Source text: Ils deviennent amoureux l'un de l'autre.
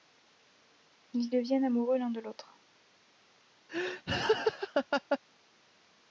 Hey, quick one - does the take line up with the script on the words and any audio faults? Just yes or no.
no